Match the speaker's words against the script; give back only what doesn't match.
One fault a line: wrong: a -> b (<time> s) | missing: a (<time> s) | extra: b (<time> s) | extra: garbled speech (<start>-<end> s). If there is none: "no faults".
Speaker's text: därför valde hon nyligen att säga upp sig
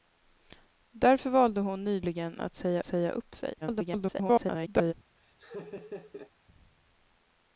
extra: säga (2.8 s)
extra: garbled speech (3.6-4.9 s)